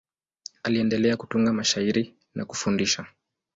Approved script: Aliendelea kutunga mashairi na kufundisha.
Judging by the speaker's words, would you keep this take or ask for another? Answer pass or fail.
pass